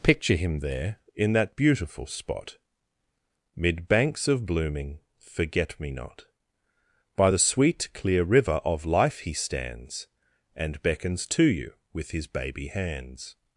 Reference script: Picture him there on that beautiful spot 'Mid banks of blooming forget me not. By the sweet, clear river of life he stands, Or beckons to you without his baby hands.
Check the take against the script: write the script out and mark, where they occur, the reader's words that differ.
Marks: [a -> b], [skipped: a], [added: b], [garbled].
Picture him there [on -> in] that beautiful spot 'Mid banks of blooming forget me not. By the sweet, clear river of life he stands, [Or -> And] beckons to you [without -> with] his baby hands.